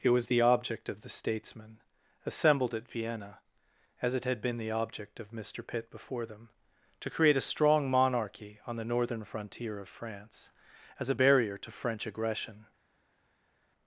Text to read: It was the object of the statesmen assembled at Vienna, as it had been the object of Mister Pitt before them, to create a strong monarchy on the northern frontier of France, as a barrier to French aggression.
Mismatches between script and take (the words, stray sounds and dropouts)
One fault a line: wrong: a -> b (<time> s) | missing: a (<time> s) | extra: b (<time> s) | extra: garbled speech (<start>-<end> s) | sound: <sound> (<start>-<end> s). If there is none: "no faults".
no faults